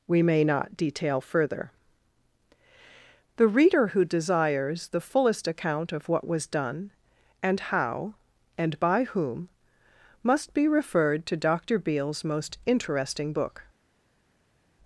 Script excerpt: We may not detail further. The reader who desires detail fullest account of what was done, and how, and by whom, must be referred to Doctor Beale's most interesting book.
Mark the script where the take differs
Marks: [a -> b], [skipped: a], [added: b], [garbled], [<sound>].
We may not detail further. The reader who desires [detail -> the] fullest account of what was done, and how, and by whom, must be referred to Doctor Beale's most interesting book.